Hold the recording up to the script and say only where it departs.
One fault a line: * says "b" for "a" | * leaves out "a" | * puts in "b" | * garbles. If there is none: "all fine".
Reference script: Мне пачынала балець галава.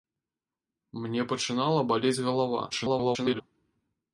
* garbles